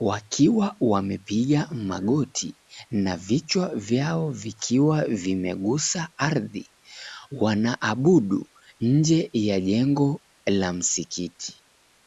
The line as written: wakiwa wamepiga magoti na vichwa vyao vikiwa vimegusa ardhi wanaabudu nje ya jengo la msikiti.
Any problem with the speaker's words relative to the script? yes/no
no